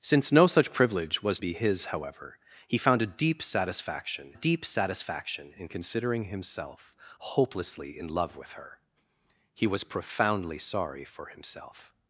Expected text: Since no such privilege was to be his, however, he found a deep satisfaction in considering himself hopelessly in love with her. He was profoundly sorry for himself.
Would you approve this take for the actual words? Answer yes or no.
no